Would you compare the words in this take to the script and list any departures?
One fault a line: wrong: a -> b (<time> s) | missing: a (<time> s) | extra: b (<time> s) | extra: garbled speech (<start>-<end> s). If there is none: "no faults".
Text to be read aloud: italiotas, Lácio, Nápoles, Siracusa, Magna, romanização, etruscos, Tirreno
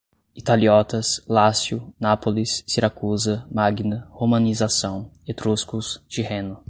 no faults